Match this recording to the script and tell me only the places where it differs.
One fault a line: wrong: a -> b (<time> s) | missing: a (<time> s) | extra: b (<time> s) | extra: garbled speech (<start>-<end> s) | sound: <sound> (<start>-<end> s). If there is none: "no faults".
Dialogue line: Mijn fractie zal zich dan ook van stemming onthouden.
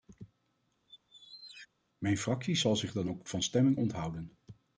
sound: squeak (0.9-1.7 s)